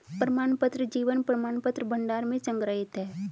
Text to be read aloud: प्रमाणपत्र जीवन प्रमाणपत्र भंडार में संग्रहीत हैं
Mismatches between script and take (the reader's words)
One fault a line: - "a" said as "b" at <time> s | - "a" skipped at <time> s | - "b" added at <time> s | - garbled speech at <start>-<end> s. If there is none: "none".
none